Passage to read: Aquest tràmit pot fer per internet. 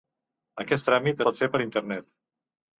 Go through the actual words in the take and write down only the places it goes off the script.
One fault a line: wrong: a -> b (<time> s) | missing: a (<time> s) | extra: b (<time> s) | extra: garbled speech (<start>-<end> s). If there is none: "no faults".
no faults